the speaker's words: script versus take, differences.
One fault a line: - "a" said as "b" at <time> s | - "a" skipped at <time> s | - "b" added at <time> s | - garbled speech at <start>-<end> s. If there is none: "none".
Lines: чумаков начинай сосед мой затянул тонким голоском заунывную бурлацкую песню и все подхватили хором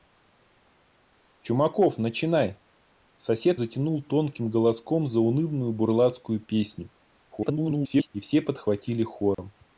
- "мой" skipped at 3.6 s
- garbled speech at 7.3-8.1 s